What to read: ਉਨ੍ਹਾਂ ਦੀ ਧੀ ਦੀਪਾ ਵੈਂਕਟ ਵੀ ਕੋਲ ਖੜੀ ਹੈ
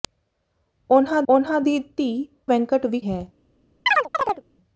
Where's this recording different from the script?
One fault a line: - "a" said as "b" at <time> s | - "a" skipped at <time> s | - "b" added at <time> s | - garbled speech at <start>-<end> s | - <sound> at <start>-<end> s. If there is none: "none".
- "ਉਨ੍ਹਾਂ" added at 1.3 s
- "ਦੀਪਾ" skipped at 2.1 s
- "ਕੋਲ ਖੜੀ" skipped at 3.0 s
- chirp at 3.9-4.4 s